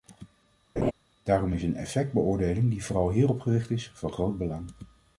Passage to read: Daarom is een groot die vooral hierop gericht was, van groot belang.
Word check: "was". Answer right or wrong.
wrong